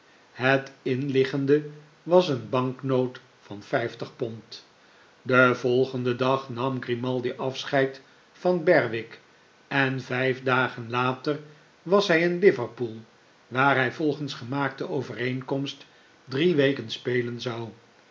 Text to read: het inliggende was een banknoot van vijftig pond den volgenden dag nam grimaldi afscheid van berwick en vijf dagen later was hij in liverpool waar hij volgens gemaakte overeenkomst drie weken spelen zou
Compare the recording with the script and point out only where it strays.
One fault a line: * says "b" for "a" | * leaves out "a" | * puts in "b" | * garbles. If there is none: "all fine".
all fine